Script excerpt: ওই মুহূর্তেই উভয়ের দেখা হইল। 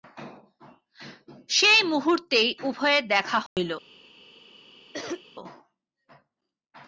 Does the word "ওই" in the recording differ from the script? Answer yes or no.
yes